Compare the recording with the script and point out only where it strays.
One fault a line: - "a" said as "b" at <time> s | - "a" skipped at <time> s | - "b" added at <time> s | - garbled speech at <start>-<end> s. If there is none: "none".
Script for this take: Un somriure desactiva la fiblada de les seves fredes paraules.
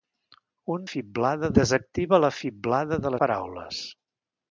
- "somriure" said as "fiblada" at 0.9 s
- "les seves fredes" skipped at 3.1 s